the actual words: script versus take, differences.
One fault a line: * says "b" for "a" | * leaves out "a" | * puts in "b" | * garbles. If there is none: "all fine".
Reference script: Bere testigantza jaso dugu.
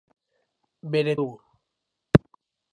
* leaves out "testigantza jaso"